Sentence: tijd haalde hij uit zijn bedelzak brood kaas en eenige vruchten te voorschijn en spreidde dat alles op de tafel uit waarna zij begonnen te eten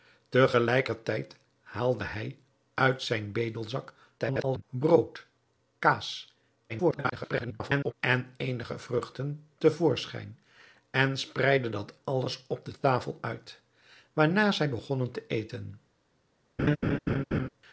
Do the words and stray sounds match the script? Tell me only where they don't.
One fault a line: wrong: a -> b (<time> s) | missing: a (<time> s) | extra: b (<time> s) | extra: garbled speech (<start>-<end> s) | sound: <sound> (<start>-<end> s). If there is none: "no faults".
extra: garbled speech (4.2-4.6 s)
extra: garbled speech (6.7-7.9 s)
sound: laugh (16.6-17.5 s)